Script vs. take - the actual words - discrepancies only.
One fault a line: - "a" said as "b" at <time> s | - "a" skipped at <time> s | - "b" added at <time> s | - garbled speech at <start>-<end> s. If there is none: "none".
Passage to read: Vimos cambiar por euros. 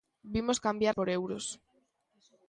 none